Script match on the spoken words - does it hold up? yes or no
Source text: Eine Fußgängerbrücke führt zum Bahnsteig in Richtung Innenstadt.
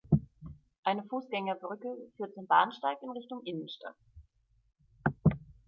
yes